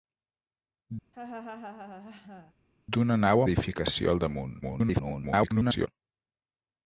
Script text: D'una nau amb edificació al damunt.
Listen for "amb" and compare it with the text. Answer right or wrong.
wrong